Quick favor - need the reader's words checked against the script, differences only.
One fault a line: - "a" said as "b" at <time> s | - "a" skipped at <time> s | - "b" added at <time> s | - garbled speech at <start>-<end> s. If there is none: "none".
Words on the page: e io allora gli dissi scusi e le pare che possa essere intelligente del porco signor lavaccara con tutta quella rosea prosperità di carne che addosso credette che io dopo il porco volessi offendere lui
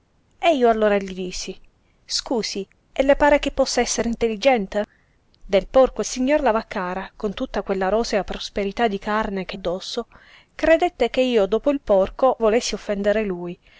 none